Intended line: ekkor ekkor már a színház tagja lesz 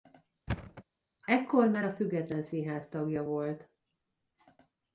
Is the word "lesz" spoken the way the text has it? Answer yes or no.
no